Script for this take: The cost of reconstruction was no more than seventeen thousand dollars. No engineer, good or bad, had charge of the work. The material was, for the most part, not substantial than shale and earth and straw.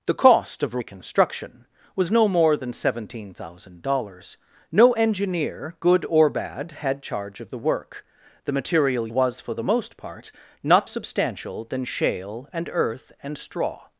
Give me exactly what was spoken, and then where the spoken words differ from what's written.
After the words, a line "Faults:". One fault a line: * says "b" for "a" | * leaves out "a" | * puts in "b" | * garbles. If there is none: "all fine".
The cost of reconstruction was no more than seventeen thousand dollars. No engineer, good or bad, had charge of the work. The material was, for the most part, not substantial than shale and earth and straw.
Faults:
all fine